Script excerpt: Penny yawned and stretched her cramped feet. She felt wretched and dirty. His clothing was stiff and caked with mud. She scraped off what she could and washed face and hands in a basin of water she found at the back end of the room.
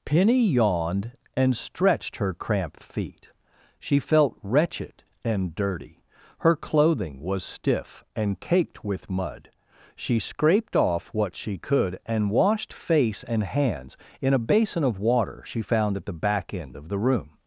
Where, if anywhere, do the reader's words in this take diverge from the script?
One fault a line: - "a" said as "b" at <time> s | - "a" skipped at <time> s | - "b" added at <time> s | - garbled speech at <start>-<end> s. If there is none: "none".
- "His" said as "Her" at 6.4 s